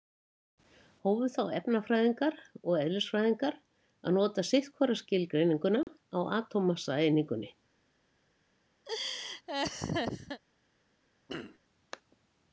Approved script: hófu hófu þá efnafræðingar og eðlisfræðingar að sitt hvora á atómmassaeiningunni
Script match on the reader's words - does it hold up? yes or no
no